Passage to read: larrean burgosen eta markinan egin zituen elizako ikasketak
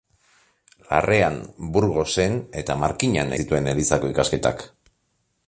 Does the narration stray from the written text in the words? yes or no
yes